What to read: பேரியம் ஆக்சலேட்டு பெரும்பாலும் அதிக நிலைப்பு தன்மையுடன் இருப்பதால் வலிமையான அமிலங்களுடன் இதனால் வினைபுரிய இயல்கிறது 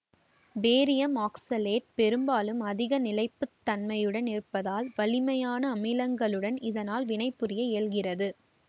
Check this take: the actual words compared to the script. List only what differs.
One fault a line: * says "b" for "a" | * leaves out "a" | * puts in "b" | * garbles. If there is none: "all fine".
all fine